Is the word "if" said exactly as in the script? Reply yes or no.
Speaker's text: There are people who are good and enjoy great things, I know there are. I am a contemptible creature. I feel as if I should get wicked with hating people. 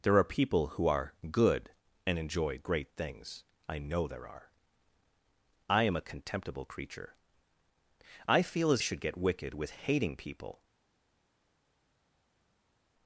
no